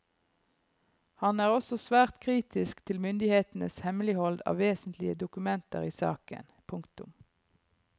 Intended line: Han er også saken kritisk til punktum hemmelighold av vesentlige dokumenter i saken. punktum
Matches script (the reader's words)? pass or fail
fail